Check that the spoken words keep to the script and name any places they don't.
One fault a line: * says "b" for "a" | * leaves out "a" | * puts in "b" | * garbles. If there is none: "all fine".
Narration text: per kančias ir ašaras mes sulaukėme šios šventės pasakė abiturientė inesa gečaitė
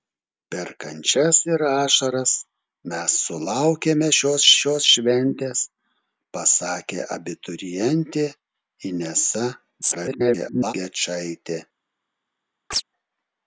* puts in "šios"
* garbles